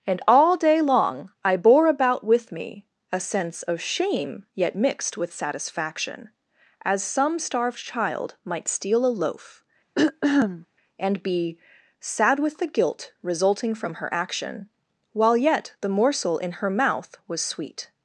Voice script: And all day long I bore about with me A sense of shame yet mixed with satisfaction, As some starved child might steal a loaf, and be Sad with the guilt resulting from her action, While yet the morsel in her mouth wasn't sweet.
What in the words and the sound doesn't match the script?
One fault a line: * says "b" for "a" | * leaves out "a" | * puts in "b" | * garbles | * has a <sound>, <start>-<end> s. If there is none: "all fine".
* has a throat clearing, 10.0-10.7 s
* says "was" for "wasn't"